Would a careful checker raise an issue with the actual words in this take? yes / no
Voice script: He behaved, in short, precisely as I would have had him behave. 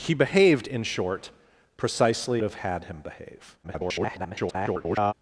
yes